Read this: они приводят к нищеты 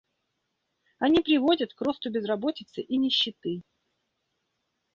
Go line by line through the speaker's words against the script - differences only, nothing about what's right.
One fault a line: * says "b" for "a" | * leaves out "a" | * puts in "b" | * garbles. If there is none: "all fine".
* puts in "росту безработицы и"